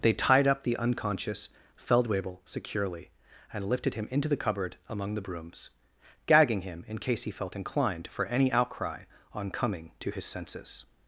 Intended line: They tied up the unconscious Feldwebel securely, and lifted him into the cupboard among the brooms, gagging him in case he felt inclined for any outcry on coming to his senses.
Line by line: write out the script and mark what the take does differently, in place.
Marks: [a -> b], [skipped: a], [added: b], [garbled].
They tied up the unconscious Feldwebel securely, and lifted him into the cupboard among the brooms, gagging him in case he felt inclined for any outcry on coming to his senses.